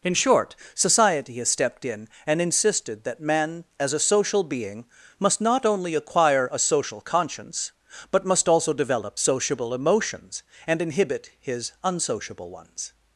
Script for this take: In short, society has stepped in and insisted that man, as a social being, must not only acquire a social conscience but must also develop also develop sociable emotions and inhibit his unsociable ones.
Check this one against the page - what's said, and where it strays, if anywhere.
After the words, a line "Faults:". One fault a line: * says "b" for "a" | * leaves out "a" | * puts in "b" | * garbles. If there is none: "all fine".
In short, society has stepped in and insisted that man, as a social being, must not only acquire a social conscience but must also develop sociable emotions and inhibit his unsociable ones.
Faults:
* leaves out "also develop"